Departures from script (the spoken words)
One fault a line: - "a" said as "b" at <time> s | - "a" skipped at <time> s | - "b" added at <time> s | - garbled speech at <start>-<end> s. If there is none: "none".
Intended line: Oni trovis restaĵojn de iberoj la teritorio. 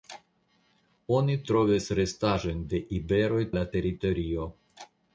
none